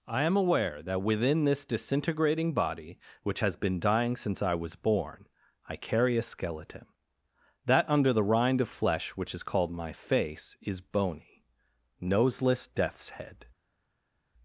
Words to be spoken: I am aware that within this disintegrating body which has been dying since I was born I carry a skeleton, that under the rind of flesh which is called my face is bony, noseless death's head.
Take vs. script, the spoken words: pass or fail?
pass